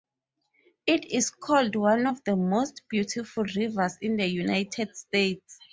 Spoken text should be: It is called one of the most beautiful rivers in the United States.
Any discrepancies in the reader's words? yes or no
no